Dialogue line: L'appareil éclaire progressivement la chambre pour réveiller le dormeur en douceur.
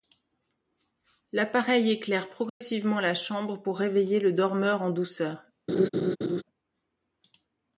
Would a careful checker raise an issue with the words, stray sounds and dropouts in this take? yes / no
yes